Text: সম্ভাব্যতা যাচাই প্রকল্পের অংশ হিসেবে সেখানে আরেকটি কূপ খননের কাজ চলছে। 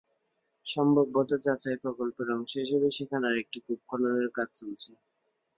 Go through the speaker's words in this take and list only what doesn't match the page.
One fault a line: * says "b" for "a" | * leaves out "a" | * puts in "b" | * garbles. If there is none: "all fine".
all fine